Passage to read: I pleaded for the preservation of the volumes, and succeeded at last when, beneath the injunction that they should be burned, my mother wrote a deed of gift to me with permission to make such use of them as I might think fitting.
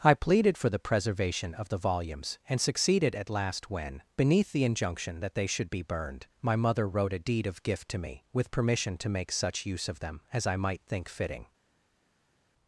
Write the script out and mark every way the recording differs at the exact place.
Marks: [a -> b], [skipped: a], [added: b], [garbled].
I pleaded for the preservation of the volumes, and succeeded at last when, beneath the injunction that they should be burned, my mother wrote a deed of gift to me with permission to make such use of them as I might think fitting.